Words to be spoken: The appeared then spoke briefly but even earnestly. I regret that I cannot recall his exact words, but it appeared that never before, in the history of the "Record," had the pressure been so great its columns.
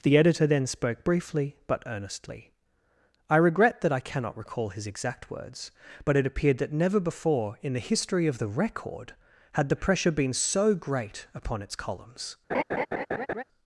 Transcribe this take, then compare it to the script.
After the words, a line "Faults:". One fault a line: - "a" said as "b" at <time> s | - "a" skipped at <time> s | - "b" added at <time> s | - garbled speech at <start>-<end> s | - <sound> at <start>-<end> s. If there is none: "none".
The editor then spoke briefly but earnestly. I regret that I cannot recall his exact words, but it appeared that never before, in the history of the "Record," had the pressure been so great upon its columns.
Faults:
- "appeared" said as "editor" at 0.2 s
- "even" skipped at 1.8 s
- "upon" added at 11.3 s
- laugh at 12.5-13.4 s